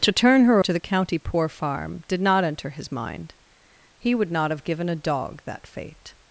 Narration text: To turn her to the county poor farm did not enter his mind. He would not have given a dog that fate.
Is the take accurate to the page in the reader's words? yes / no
yes